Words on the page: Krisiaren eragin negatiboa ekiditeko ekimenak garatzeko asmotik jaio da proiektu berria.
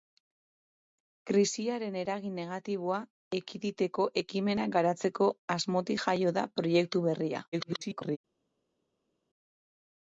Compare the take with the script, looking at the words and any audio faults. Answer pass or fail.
fail